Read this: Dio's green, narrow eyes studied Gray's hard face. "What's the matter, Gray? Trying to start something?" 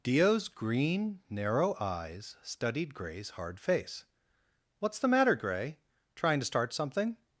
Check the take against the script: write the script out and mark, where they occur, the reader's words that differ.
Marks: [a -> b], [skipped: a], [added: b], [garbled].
Dio's green, narrow eyes studied Gray's hard face. "What's the matter, Gray? Trying to start something?"